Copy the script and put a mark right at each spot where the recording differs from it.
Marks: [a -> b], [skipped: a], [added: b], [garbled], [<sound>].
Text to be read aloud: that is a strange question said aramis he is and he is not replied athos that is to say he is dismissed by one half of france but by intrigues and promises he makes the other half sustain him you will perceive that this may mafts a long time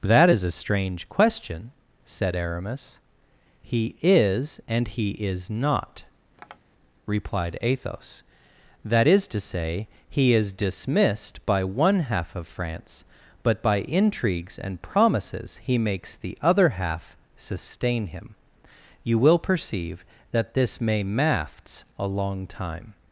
that is a strange question said aramis he is and he is not [tap] replied athos that is to say he is dismissed by one half of france but by intrigues and promises he makes the other half sustain him you will perceive that this may mafts a long time